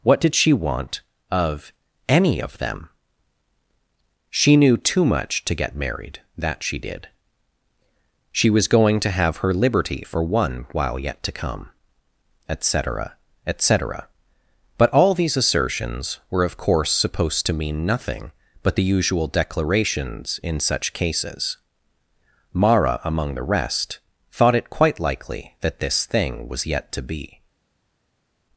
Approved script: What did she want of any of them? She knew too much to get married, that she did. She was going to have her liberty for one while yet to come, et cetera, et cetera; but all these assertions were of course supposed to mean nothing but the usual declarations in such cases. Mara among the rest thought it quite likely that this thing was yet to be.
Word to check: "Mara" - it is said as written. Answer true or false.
true